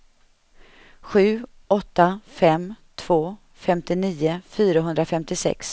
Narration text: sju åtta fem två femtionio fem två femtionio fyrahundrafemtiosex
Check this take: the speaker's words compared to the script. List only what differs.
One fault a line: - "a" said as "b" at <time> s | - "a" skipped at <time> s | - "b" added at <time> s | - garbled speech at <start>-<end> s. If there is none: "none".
- "fem två femtionio" skipped at 4.4 s